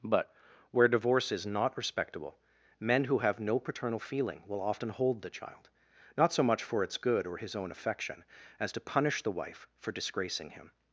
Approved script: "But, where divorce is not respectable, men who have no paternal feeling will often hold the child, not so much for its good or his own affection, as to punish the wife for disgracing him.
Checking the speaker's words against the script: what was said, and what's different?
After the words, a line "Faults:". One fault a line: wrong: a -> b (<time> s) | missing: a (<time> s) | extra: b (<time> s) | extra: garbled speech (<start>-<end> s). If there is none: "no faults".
"But, where divorce is not respectable, men who have no paternal feeling will often hold the child, not so much for its good or his own affection, as to punish the wife for disgracing him.
Faults:
no faults